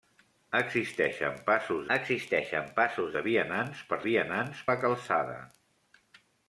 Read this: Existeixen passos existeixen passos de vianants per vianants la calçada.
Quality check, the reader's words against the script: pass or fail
pass